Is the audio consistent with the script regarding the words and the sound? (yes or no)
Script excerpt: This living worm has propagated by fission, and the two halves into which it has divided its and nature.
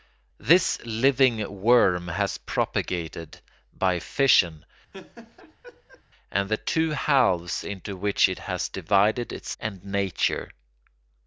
no